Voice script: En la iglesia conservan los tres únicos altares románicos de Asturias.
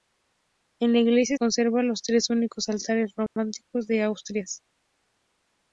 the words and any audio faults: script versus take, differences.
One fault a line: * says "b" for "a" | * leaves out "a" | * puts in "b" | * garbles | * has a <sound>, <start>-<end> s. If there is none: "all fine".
* has a dropout, 3.3-3.4 s